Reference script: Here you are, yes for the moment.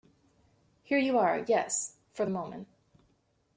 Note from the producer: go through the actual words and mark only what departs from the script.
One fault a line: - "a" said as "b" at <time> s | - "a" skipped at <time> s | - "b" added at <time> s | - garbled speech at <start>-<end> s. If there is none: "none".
none